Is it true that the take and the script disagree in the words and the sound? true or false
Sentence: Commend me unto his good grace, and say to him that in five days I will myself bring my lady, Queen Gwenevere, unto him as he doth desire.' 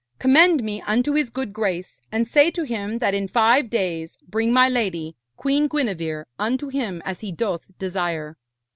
true